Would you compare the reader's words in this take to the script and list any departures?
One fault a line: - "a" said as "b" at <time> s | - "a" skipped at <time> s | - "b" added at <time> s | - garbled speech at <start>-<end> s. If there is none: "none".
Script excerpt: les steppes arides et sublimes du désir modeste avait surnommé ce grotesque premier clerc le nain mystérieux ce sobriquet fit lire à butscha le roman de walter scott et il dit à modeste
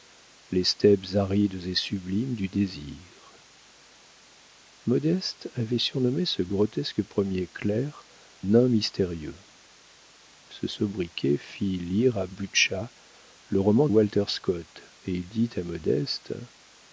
- "le" skipped at 8.0 s
- "de" skipped at 13.9 s